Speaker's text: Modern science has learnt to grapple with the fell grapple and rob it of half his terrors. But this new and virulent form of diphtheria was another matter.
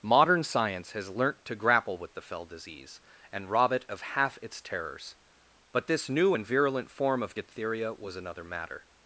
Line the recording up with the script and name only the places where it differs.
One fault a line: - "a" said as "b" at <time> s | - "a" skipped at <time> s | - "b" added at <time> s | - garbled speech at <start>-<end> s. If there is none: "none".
- "grapple" said as "disease" at 2.5 s
- "his" said as "its" at 4.4 s